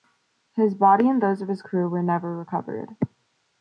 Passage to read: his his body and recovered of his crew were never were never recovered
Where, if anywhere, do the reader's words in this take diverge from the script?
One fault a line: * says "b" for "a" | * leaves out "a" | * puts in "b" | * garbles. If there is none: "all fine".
* leaves out "his"
* says "those" for "recovered"
* leaves out "were never"